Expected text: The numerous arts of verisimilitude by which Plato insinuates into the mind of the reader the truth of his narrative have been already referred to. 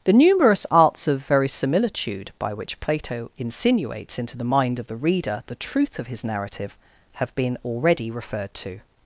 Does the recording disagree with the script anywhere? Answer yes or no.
no